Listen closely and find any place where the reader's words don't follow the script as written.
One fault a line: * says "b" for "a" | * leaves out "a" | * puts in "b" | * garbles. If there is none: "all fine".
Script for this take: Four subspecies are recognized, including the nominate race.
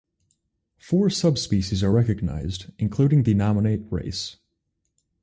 all fine